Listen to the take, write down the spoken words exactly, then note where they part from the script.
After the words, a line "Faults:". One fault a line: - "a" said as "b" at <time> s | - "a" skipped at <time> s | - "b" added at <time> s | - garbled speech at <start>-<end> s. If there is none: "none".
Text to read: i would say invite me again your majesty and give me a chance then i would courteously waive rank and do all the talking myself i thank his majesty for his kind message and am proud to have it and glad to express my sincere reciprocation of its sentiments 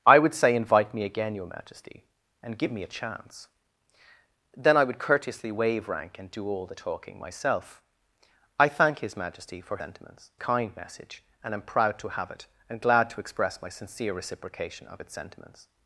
i would say invite me again your majesty and give me a chance then i would courteously waive rank and do all the talking myself i thank his majesty for sentiments kind message and am proud to have it and glad to express my sincere reciprocation of its sentiments
Faults:
- "his" said as "sentiments" at 9.8 s